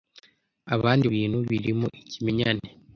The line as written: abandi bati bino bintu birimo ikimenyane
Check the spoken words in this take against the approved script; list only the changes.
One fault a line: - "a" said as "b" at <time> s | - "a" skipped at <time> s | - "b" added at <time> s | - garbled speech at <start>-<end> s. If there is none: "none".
- "bati bino" skipped at 1.1 s